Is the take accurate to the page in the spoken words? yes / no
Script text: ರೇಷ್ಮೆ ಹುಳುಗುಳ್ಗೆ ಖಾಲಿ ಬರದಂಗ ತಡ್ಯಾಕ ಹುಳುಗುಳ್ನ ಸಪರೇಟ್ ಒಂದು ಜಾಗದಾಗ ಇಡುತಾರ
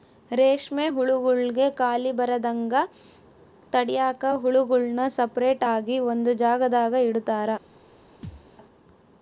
no